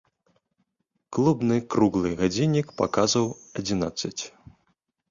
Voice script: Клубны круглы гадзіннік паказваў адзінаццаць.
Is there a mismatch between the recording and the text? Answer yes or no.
no